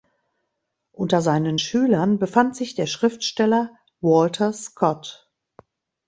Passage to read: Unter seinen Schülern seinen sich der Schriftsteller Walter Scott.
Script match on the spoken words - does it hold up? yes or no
no